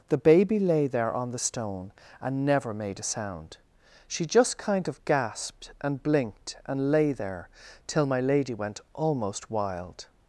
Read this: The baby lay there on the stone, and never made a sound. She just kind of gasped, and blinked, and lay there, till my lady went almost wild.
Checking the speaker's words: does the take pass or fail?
pass